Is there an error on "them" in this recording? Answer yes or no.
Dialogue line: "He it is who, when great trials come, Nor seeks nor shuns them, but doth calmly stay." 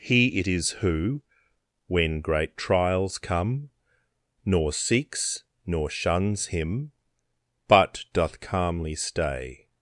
yes